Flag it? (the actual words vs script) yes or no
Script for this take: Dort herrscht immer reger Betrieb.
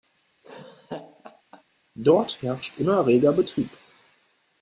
no